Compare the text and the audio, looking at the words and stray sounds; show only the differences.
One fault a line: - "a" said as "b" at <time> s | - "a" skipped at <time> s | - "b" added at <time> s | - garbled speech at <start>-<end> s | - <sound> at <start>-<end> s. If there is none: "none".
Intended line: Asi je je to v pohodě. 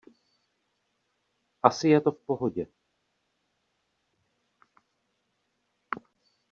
- "je" skipped at 2.0 s